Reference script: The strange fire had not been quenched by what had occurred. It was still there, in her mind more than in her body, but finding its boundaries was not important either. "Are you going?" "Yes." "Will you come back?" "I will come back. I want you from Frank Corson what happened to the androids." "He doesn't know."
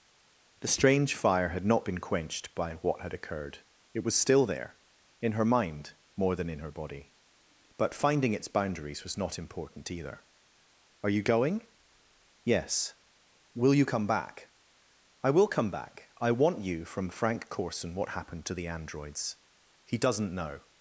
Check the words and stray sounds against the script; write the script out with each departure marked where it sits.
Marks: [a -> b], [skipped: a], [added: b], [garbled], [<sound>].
The strange fire had not been quenched by what had occurred. It was still there, in her mind more than in her body, but finding its boundaries was not important either. "Are you going?" "Yes." "Will you come back?" "I will come back. I want you from Frank Corson what happened to the androids." "He doesn't know."